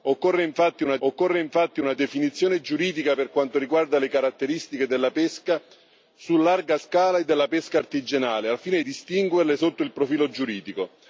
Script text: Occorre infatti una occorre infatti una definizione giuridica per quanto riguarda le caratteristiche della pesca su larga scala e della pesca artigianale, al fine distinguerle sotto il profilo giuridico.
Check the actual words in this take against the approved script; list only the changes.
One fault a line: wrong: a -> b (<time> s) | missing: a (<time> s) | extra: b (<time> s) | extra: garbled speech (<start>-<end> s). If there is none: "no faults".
no faults